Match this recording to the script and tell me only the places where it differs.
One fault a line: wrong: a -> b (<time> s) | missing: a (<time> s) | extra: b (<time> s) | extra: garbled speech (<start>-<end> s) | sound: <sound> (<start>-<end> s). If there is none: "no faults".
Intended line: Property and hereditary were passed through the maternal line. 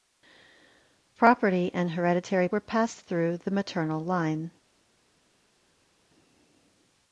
no faults